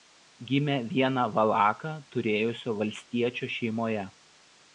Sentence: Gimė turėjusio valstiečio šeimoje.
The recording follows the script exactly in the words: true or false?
false